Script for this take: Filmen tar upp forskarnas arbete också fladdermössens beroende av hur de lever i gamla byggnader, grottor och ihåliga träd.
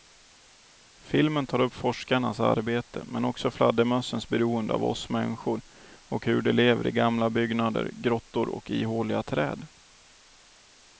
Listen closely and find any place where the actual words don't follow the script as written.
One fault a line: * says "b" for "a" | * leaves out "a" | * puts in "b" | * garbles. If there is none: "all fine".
* puts in "men"
* puts in "oss människor och"